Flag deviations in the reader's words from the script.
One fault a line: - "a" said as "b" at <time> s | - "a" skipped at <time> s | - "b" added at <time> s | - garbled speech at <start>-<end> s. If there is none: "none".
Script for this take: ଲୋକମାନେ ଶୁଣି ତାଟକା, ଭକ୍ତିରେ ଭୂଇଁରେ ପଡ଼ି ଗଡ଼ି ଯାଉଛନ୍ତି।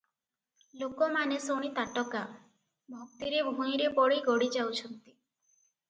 none